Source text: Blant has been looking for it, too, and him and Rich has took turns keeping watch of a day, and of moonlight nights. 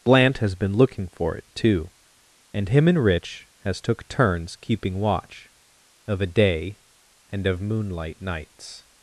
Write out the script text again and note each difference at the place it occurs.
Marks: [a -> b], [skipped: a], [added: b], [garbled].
Blant has been looking for it, too, and him and Rich has took turns keeping watch of a day, and of moonlight nights.